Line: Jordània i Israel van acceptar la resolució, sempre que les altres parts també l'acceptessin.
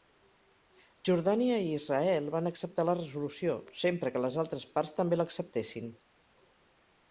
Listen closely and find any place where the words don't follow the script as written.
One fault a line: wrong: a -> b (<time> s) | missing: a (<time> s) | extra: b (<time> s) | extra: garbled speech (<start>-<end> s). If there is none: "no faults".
no faults